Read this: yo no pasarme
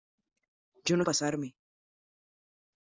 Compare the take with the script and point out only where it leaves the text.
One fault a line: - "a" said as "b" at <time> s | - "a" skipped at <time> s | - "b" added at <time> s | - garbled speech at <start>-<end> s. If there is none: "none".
none